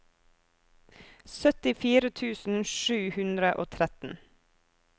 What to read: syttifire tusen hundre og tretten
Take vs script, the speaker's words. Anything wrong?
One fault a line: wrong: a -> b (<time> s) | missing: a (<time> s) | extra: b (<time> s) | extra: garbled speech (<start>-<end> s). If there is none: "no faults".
extra: sju (2.8 s)